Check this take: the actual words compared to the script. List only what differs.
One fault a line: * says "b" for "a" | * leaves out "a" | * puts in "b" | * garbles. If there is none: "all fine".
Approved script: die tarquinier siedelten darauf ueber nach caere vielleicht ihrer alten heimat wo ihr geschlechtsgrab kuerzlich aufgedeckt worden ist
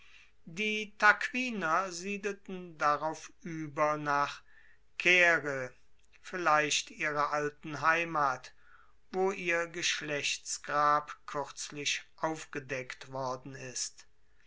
all fine